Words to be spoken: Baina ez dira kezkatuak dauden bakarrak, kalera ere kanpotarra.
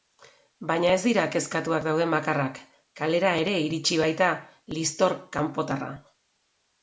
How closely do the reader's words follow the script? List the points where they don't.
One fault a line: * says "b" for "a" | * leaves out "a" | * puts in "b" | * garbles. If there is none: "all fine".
* puts in "iritsi baita liztor"